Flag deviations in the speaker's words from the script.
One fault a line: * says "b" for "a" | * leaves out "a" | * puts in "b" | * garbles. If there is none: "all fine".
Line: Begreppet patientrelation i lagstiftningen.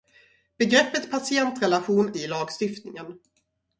all fine